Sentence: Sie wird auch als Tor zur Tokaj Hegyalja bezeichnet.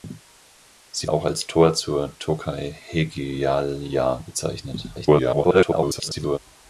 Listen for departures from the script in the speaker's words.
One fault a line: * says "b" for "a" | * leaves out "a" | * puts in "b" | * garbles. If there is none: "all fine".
* leaves out "wird"
* garbles